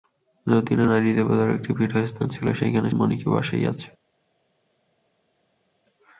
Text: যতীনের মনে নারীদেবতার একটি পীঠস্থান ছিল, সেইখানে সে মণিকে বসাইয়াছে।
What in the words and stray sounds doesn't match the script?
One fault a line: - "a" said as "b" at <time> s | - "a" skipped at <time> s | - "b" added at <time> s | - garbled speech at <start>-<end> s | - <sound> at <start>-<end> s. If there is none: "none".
- "মনে" skipped at 0.9 s
- "সে" skipped at 2.9 s